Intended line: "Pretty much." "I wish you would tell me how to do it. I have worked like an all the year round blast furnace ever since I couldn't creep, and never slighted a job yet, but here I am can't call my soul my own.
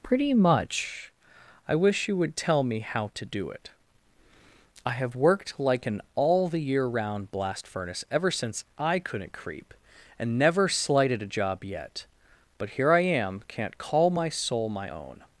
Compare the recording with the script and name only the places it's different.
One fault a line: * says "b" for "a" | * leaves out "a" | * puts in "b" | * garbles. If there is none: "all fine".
all fine